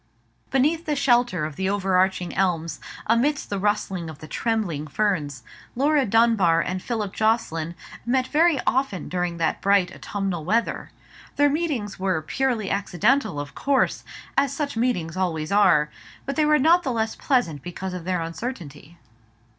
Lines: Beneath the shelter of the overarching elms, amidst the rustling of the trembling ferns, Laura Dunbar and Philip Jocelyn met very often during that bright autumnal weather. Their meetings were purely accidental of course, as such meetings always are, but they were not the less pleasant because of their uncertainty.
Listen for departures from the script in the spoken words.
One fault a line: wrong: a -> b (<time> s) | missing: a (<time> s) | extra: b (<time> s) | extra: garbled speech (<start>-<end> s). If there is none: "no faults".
no faults